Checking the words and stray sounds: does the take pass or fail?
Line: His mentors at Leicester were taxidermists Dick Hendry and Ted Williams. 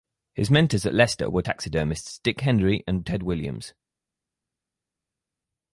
pass